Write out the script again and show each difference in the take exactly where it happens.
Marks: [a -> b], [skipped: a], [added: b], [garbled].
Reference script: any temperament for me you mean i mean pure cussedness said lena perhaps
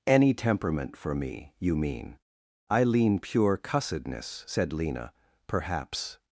any temperament for me you mean i [mean -> lean] pure cussedness said lena perhaps